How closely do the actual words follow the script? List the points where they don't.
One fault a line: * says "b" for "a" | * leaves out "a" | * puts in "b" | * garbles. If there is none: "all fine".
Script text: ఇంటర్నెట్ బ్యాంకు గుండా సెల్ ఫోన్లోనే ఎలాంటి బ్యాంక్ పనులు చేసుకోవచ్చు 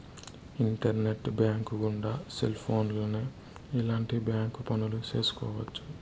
all fine